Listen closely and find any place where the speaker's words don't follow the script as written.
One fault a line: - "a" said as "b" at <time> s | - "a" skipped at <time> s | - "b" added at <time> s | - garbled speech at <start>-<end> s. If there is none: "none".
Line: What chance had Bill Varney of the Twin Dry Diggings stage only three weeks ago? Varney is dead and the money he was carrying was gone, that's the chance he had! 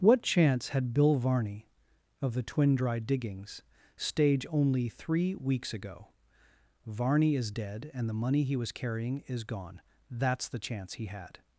- "was" said as "is" at 9.3 s